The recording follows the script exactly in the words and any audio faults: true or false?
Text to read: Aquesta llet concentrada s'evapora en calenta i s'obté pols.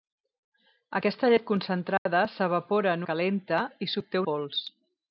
false